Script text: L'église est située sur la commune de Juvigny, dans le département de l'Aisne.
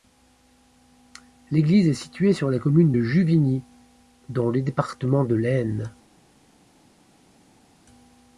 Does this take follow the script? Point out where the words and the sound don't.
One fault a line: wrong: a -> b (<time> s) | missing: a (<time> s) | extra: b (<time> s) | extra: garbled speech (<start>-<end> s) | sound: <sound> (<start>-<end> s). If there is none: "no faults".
no faults